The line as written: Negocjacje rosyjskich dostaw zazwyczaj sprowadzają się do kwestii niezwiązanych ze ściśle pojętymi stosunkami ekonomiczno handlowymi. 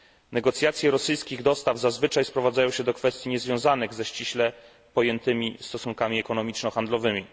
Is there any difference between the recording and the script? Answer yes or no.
no